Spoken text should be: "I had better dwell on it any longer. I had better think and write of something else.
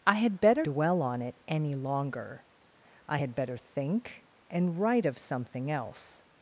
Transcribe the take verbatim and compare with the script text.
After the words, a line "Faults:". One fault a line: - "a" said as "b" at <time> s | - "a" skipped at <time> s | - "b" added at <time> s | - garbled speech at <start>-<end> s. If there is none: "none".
"I had better dwell on it any longer. I had better think and write of something else.
Faults:
none